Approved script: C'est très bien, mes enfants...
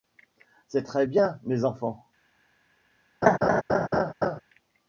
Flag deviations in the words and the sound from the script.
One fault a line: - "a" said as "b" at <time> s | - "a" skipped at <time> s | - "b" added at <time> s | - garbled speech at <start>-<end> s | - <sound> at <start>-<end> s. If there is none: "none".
- laugh at 3.2-4.4 s